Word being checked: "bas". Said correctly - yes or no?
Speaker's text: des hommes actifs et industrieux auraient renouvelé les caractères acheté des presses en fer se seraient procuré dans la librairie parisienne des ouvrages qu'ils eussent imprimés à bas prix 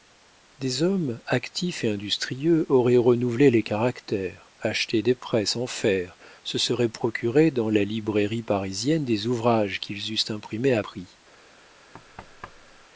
no